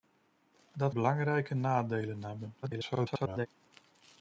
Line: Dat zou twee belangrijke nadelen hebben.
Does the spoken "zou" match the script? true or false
false